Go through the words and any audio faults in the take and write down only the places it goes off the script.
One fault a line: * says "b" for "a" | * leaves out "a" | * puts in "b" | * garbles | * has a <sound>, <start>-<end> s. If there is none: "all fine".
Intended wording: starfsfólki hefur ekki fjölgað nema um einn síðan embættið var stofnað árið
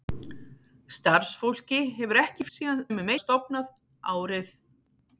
* says "síðan" for "fjölgað"
* leaves out "einn síðan embættið"